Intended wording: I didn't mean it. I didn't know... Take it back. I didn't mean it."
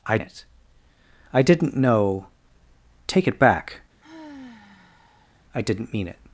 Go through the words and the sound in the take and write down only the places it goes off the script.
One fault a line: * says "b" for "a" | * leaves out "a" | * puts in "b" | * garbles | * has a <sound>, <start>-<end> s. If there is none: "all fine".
* leaves out "didn't mean"
* has a sigh, 4.0-5.4 s